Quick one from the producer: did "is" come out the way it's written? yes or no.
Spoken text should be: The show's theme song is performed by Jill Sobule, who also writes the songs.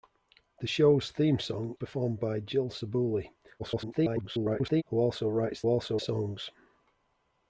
no